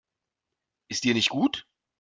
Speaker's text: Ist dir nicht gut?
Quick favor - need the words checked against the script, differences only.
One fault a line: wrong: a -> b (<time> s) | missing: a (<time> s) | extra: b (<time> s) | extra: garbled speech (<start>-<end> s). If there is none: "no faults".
no faults